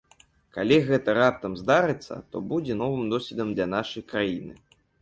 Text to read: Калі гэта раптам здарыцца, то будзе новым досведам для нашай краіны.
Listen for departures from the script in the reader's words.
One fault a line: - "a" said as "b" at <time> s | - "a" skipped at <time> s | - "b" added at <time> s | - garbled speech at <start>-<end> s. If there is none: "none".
none